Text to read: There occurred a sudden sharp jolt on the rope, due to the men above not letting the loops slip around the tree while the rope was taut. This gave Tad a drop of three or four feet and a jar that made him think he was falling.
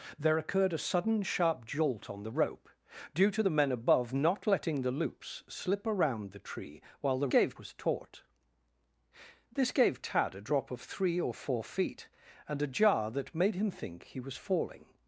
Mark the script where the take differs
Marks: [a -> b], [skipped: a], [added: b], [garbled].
There occurred a sudden sharp jolt on the rope, due to the men above not letting the loops slip around the tree while the [rope -> gave] was taut. This gave Tad a drop of three or four feet and a jar that made him think he was falling.